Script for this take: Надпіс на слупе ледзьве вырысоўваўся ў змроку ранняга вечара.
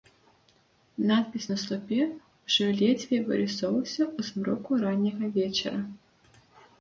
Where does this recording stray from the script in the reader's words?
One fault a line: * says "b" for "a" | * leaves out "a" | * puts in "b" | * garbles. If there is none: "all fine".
* puts in "ўжо"